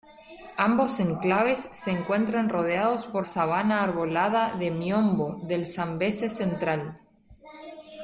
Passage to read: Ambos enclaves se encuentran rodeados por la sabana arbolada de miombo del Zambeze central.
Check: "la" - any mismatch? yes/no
yes